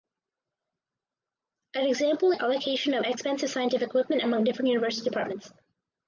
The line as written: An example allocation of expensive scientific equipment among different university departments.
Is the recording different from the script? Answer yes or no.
no